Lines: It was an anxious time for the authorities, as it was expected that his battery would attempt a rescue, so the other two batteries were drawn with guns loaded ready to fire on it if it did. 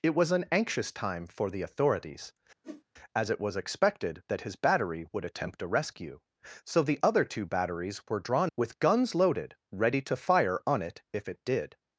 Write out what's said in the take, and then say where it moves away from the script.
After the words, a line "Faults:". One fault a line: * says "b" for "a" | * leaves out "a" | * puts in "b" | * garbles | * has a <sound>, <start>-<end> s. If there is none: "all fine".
It was an anxious time for the authorities, as it was expected that his battery would attempt a rescue, so the other two batteries were drawn with guns loaded ready to fire on it if it did.
Faults:
* has a whoosh, 2.6-2.8 s